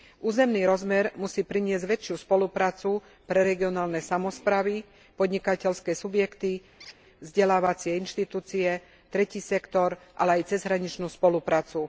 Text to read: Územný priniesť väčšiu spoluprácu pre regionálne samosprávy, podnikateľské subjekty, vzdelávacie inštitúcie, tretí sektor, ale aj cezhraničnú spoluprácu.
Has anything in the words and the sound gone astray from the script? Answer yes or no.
yes